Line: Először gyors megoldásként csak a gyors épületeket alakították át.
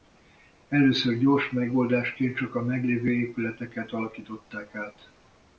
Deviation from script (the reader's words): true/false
true